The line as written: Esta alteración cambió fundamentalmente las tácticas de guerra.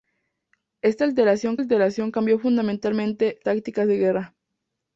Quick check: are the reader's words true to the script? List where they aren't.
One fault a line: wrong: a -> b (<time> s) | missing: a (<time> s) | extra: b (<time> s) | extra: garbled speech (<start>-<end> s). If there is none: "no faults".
extra: alteración (1.6 s)
missing: las (3.4 s)